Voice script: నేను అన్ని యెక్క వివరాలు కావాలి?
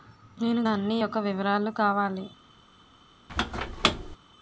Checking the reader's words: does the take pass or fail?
pass